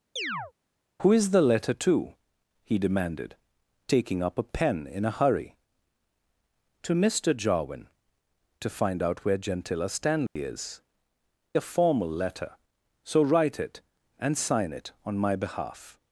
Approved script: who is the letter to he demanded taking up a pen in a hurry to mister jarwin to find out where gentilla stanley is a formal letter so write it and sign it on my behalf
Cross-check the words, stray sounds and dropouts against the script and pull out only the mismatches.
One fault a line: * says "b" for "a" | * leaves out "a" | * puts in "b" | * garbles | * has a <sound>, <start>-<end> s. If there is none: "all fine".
* has a chirp, 0.2-0.5 s
* has a dropout, 10.3-10.4 s